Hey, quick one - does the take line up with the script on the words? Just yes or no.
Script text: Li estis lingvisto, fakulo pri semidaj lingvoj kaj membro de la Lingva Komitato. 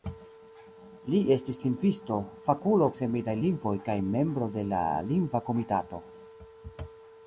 no